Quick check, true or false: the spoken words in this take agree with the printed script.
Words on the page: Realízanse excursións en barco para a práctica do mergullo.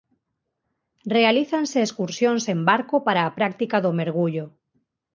true